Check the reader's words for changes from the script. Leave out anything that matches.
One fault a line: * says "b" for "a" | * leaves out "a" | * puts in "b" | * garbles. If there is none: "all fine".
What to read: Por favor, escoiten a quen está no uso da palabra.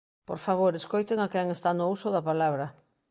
all fine